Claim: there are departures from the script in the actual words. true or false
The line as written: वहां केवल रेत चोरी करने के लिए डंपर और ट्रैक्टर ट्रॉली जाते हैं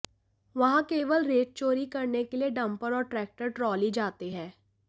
false